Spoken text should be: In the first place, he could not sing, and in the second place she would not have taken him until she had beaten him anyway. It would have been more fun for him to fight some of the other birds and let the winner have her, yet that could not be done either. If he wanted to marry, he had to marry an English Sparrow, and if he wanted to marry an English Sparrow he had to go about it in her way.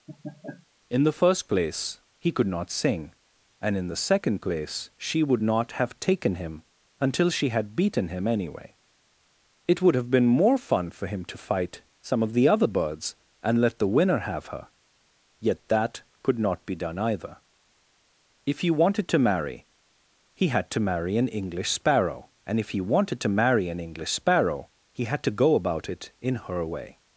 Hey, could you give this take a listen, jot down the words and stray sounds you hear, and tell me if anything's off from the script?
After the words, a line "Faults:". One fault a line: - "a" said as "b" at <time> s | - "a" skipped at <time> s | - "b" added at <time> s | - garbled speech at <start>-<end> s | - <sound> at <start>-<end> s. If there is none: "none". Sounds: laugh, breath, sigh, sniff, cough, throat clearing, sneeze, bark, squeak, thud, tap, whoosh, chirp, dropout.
In the first place, he could not sing, and in the second place she would not have taken him until she had beaten him anyway. It would have been more fun for him to fight some of the other birds and let the winner have her, yet that could not be done either. If he wanted to marry, he had to marry an English Sparrow, and if he wanted to marry an English Sparrow he had to go about it in her way.
Faults:
- laugh at 0.1-0.7 s